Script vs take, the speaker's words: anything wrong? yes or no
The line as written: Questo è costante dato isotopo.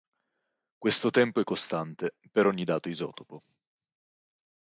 yes